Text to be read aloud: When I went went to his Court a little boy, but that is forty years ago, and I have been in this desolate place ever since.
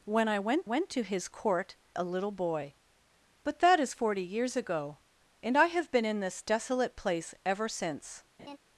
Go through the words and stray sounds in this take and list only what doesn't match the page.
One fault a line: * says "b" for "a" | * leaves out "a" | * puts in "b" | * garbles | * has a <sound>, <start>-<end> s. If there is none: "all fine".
* has a laugh, 8.4-8.6 s